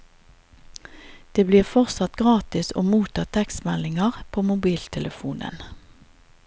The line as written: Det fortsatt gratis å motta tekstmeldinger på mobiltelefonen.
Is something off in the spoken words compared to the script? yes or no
yes